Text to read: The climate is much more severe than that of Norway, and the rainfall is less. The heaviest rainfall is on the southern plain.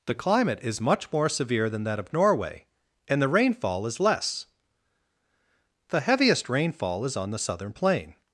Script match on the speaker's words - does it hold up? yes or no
yes